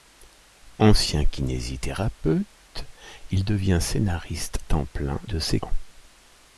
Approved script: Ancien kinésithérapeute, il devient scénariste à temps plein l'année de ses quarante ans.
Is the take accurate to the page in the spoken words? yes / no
no